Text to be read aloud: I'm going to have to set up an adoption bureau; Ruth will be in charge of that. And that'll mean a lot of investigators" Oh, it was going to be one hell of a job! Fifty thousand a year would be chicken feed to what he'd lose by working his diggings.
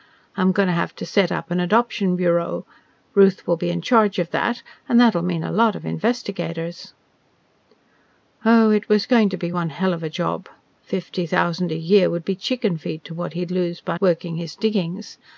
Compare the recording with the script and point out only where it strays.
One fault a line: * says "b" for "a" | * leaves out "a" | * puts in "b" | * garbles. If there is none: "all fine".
all fine